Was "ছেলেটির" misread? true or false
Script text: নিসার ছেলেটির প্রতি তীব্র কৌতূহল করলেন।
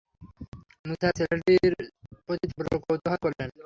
false